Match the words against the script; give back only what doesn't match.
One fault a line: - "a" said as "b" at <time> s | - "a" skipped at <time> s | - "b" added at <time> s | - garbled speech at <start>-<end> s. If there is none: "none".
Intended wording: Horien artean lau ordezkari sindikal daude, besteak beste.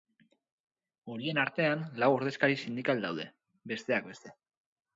none